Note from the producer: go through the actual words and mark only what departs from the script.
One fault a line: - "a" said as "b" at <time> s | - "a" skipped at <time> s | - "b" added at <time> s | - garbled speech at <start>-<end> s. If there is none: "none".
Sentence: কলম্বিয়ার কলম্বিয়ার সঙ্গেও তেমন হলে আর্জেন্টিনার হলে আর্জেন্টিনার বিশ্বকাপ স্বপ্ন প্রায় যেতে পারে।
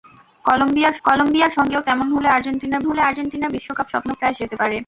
none